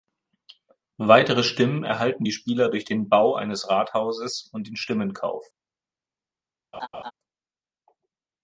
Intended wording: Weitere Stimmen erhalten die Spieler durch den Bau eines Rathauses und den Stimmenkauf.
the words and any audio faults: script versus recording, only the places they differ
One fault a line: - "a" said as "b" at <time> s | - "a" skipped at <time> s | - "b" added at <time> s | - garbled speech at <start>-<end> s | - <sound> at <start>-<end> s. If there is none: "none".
- laugh at 6.7-7.1 s